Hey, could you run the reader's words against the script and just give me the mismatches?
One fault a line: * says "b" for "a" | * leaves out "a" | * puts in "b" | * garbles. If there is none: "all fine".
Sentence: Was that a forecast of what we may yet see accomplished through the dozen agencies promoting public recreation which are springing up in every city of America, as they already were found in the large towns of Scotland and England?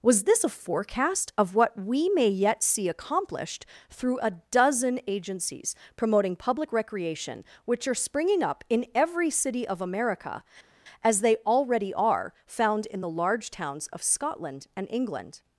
* says "this" for "that"
* says "a" for "the"
* says "are" for "were"